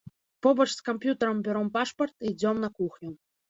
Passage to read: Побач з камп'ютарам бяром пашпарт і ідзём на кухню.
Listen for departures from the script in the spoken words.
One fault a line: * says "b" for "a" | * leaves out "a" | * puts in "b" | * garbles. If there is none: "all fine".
all fine